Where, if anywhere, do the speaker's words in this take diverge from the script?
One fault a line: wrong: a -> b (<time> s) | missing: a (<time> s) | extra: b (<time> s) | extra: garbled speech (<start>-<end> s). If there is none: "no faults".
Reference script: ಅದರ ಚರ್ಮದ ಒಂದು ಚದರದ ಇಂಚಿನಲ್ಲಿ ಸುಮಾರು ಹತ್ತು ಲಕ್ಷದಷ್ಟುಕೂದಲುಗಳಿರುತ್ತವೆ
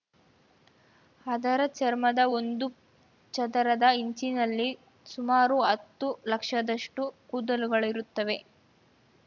no faults